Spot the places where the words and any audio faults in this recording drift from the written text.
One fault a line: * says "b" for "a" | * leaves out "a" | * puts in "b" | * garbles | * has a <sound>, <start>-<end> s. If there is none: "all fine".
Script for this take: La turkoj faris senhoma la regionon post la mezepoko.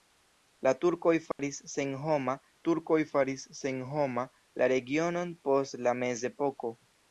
* has a dropout, 1.3-1.4 s
* puts in "turkoj faris senhoma"